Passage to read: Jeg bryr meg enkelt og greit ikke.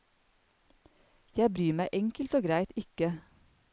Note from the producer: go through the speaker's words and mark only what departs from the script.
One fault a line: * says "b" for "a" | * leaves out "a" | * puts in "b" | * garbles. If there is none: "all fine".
all fine